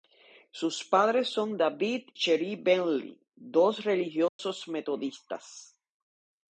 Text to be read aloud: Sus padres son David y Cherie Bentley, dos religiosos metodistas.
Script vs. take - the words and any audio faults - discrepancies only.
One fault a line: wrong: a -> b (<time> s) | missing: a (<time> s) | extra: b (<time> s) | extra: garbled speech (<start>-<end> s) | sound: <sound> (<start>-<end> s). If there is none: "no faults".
missing: y (2.1 s)
sound: dropout (4.3-4.4 s)